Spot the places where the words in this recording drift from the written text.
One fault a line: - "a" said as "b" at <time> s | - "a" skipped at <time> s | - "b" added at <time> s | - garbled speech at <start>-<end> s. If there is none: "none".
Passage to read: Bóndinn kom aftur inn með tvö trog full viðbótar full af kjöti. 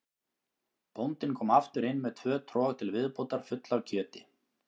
- "full" said as "til" at 2.8 s